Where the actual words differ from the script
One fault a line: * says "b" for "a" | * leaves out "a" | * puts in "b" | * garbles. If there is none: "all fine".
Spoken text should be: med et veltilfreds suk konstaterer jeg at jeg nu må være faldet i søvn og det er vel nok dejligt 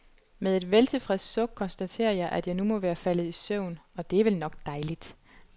all fine